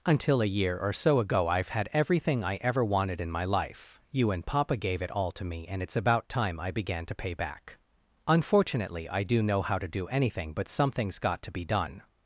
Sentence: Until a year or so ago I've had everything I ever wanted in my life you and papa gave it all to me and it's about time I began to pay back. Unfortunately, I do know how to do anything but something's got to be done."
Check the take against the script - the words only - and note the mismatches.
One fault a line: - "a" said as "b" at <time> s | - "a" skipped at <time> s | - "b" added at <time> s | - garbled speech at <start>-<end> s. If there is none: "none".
none